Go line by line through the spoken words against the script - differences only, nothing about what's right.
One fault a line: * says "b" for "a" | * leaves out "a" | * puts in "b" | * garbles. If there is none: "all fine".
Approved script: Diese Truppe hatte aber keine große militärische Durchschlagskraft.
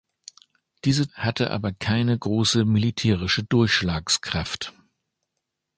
* leaves out "Truppe"